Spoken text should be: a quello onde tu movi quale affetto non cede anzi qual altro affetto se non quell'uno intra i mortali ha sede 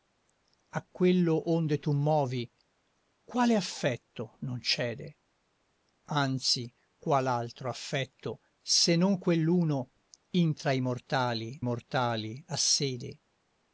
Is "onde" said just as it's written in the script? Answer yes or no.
yes